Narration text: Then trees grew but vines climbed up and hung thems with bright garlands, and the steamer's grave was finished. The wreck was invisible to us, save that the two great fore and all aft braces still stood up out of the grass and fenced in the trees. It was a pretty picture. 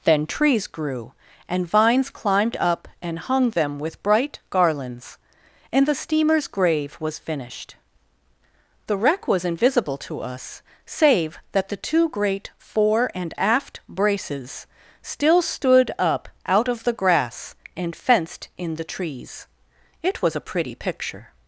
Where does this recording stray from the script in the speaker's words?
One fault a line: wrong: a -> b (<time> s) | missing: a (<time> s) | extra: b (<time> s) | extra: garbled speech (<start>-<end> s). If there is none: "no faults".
wrong: but -> and (1.5 s)
wrong: thems -> them (3.5 s)
missing: all (13.3 s)